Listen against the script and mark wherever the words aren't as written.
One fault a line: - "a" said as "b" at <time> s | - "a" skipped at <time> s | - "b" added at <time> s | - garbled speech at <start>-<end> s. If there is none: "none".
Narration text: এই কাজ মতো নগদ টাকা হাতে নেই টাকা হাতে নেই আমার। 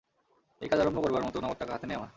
- "আরম্ভ করবার" added at 0.8 s
- "টাকা হাতে নেই" skipped at 2.0 s